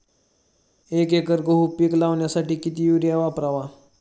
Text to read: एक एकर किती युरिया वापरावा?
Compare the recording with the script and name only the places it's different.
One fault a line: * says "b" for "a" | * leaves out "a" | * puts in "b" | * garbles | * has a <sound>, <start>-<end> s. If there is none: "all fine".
* puts in "गहू पीक लावण्यासाठी"